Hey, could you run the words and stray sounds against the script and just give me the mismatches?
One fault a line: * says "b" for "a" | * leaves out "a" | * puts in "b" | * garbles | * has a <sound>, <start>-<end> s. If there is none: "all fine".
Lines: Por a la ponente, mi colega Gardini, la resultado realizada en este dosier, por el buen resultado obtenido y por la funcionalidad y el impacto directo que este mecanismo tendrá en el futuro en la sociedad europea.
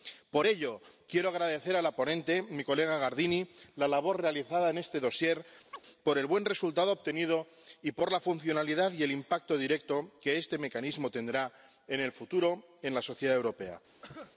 * puts in "ello quiero agradecer"
* says "labor" for "resultado"
* has a chirp, 5.7-5.8 s
* has a cough, 14.0-14.3 s